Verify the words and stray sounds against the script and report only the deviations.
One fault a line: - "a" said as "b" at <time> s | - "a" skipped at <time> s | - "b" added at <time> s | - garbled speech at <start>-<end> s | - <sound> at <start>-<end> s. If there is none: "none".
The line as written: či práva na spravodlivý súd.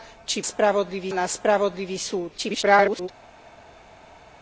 - "práva" said as "spravodlivý" at 0.4 s
- garbled speech at 2.4-3.1 s